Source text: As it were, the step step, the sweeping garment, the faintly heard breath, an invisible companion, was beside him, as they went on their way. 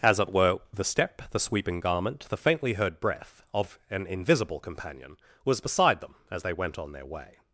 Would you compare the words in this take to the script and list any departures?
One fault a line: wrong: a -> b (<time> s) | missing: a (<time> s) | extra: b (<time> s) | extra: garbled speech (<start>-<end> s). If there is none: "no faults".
missing: step (1.3 s)
extra: of (3.5 s)
wrong: him -> them (6.0 s)